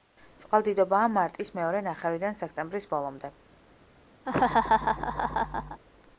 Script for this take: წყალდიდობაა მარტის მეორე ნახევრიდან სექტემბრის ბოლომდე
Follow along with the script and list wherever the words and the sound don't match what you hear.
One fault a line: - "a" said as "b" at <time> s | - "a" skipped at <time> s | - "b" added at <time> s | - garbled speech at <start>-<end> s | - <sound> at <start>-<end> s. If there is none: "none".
- laugh at 4.3-5.8 s